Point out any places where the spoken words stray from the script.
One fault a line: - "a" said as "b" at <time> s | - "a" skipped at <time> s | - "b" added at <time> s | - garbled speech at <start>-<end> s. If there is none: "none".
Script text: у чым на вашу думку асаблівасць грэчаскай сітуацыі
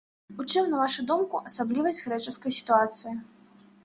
none